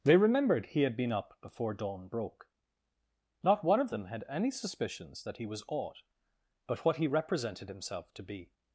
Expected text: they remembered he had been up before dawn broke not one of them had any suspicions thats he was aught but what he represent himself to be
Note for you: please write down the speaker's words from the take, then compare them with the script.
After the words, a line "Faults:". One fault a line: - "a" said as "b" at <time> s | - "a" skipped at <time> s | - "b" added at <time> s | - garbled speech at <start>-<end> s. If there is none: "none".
they remembered he had been up before dawn broke not one of them had any suspicions that he was aught but what he represented himself to be
Faults:
- "thats" said as "that" at 5.2 s
- "represent" said as "represented" at 7.1 s